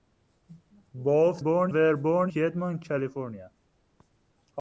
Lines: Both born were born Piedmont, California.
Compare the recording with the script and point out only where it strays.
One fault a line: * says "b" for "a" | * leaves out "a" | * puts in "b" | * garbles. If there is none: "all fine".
all fine